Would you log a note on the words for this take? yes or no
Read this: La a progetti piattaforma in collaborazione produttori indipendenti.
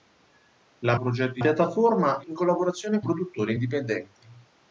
no